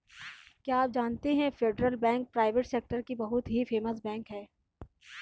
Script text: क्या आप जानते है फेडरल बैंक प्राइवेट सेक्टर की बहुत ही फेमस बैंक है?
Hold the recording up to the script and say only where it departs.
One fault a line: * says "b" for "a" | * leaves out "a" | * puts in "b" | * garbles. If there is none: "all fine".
all fine